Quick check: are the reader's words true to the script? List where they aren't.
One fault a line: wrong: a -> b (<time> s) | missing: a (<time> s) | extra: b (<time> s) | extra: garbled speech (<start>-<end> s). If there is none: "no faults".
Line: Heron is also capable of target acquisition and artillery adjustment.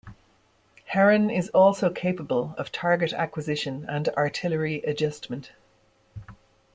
no faults